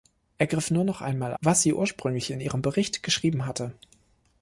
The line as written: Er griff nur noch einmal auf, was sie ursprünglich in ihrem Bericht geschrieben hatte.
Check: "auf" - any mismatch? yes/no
yes